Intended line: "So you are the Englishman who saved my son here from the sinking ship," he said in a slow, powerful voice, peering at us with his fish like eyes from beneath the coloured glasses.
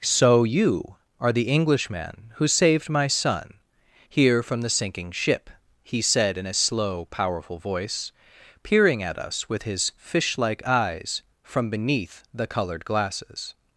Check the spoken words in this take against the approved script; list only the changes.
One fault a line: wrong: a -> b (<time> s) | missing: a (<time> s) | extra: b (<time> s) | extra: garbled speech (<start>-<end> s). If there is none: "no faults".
no faults